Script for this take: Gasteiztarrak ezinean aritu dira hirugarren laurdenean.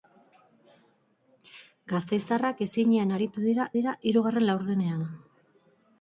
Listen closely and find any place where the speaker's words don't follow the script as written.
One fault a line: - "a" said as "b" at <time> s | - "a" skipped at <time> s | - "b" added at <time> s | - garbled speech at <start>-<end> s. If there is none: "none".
- "dira" added at 3.8 s